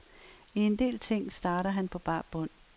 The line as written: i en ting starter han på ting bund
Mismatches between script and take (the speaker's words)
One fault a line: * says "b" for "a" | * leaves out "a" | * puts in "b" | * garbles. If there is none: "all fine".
* puts in "del"
* says "bar" for "ting"